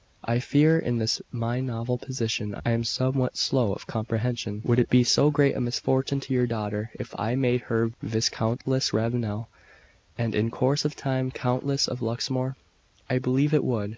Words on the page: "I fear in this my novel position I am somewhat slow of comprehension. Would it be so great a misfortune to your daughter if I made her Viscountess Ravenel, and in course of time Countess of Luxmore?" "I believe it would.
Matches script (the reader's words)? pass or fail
pass